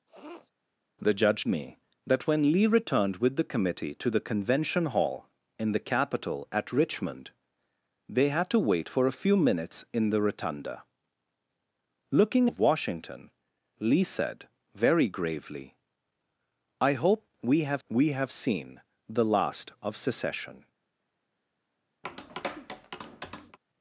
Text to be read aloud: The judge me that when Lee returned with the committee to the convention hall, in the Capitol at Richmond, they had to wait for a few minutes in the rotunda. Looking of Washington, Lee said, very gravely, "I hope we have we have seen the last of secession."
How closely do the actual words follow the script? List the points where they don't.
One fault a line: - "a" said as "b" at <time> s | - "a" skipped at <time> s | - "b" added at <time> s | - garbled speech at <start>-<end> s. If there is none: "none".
none